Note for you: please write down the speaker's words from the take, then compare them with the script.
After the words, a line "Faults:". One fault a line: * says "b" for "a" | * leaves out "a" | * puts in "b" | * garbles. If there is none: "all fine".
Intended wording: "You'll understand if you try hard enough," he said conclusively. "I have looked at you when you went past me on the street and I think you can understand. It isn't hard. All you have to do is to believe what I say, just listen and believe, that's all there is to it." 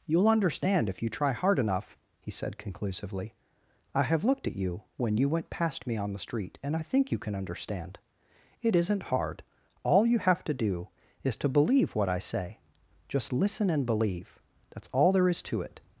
"You'll understand if you try hard enough," he said conclusively. "I have looked at you when you went past me on the street and I think you can understand. It isn't hard. All you have to do is to believe what I say, just listen and believe, that's all there is to it."
Faults:
all fine